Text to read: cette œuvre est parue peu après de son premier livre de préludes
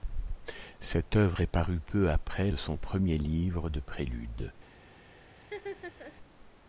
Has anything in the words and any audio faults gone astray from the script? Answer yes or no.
yes